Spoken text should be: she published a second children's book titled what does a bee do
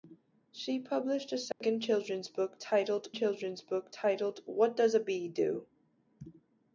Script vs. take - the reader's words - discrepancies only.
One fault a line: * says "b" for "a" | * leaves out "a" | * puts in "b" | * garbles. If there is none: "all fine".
* puts in "children's book titled"